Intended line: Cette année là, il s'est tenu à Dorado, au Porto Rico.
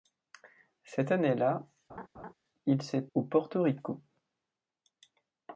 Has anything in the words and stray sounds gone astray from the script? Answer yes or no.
yes